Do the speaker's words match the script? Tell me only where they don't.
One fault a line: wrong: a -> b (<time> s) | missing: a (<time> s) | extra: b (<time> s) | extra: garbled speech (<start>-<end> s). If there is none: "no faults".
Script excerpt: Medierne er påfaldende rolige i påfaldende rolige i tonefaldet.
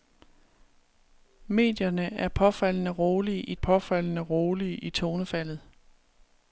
no faults